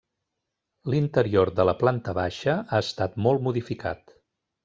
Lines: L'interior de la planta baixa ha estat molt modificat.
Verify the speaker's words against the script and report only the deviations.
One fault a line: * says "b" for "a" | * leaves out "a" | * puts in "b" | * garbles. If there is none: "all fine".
all fine